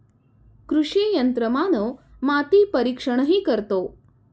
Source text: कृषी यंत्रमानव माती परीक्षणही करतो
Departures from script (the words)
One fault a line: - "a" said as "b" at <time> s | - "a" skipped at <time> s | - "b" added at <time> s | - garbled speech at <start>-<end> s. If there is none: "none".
none